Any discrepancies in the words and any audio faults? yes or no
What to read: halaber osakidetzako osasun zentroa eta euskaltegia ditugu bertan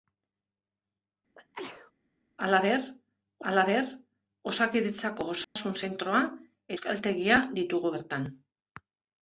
yes